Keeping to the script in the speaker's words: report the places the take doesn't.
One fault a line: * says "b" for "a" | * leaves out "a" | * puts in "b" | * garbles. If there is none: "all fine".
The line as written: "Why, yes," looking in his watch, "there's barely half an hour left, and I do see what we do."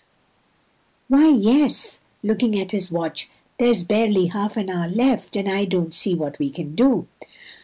* says "at" for "in"
* says "don't" for "do"
* puts in "can"